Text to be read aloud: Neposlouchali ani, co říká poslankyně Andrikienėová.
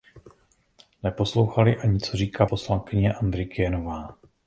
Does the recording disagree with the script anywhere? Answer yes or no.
no